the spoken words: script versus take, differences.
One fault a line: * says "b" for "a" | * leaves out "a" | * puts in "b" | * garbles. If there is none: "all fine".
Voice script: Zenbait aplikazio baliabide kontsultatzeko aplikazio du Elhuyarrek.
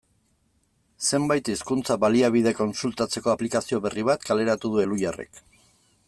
* says "hizkuntza" for "aplikazio"
* puts in "berri bat kaleratu"